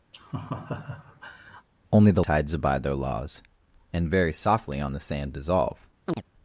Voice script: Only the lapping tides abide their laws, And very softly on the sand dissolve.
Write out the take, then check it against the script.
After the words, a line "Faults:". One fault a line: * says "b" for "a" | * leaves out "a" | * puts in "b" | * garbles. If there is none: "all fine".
Only the tides abide their laws, And very softly on the sand dissolve.
Faults:
* leaves out "lapping"